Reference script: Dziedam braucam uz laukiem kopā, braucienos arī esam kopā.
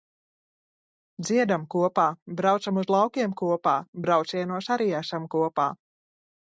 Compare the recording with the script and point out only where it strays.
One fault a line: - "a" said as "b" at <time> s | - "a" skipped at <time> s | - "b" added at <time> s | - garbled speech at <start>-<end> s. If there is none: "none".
- "kopā" added at 1.8 s